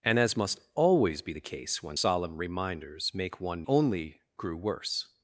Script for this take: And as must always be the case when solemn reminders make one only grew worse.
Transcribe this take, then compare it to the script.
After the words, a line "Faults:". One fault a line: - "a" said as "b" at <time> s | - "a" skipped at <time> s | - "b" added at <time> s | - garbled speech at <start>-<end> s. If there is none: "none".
And as must always be the case when solemn reminders make one only grew worse.
Faults:
none